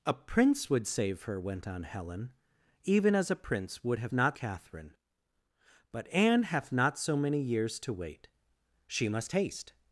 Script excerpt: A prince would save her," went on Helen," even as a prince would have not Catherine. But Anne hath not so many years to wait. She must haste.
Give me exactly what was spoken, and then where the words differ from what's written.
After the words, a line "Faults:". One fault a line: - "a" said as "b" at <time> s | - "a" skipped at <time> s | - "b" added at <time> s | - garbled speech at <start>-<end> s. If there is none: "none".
A prince would save her," went on Helen," even as a prince would have not Catherine. But Anne hath not so many years to wait. She must haste.
Faults:
none